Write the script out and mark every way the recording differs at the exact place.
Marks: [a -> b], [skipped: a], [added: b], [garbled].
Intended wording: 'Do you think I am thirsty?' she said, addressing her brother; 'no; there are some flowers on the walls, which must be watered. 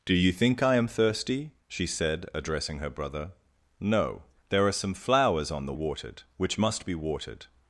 'Do you think I am thirsty?' she said, addressing her brother; 'no; there are some flowers on the [walls, -> watered] which must be watered.